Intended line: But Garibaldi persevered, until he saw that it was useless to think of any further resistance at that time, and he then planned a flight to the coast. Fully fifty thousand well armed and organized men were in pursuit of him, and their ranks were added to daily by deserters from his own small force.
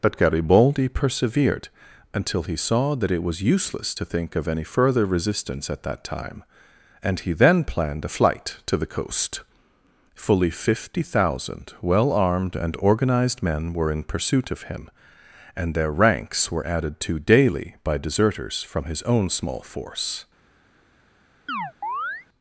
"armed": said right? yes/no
yes